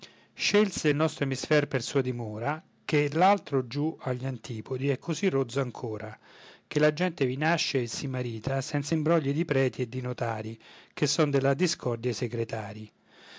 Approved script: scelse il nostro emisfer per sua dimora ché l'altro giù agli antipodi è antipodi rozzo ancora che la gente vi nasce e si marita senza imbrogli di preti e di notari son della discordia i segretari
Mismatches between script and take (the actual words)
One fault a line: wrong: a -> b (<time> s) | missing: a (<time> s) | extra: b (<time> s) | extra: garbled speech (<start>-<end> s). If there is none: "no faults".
wrong: antipodi -> così (5.0 s)
extra: che (10.9 s)